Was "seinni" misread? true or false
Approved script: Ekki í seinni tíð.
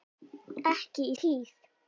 true